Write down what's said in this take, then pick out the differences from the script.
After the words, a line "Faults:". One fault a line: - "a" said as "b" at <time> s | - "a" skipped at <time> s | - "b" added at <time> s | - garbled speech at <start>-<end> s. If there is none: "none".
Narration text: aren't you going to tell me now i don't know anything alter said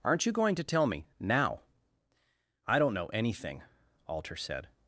aren't you going to tell me now i don't know anything alter said
Faults:
none